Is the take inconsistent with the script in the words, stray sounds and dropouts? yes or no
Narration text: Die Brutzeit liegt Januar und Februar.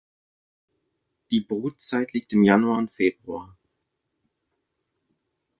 yes